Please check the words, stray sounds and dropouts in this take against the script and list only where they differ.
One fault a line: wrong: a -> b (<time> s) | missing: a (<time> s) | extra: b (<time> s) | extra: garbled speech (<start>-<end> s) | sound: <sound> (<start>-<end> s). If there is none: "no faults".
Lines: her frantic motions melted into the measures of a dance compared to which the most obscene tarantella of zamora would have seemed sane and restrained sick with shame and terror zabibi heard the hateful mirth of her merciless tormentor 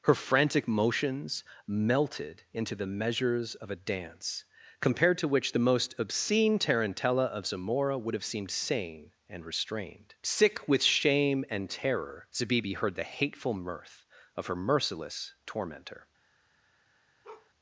sound: bark (17.2-17.5 s)